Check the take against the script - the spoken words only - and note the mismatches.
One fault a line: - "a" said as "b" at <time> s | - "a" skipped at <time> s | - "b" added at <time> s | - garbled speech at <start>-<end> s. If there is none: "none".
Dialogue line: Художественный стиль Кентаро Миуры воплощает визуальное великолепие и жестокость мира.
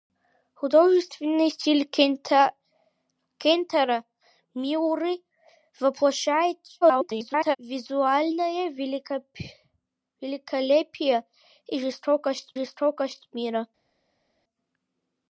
- garbled speech at 6.8-7.6 s
- "жестокость" added at 12.5 s